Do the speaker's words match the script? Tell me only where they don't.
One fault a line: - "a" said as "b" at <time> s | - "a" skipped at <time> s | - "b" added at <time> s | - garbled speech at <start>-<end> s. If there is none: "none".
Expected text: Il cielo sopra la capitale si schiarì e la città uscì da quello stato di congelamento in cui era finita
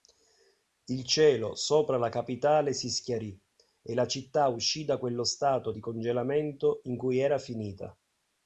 none